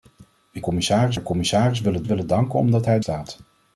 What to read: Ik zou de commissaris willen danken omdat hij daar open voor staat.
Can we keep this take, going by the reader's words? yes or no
no